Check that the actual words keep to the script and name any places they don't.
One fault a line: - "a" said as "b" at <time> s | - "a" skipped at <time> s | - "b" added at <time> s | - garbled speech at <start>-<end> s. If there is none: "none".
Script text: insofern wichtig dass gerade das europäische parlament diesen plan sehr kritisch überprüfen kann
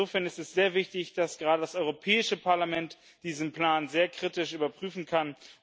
- "ist es sehr" added at 0.2 s